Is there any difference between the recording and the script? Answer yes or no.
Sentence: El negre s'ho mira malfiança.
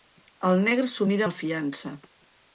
no